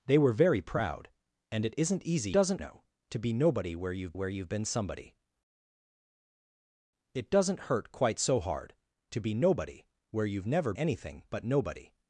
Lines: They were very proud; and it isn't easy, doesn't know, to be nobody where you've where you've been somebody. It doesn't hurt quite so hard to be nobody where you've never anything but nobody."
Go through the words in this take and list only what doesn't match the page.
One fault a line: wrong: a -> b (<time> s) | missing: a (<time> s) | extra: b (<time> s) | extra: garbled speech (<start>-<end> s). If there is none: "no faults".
no faults